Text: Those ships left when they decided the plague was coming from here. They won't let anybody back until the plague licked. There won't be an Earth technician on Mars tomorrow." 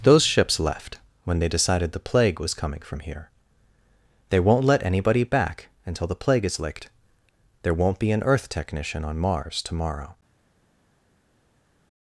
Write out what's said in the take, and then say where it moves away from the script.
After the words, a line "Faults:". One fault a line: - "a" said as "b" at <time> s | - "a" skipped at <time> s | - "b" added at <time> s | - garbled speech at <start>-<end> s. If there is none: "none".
Those ships left when they decided the plague was coming from here. They won't let anybody back until the plague is licked. There won't be an Earth technician on Mars tomorrow."
Faults:
- "is" added at 6.5 s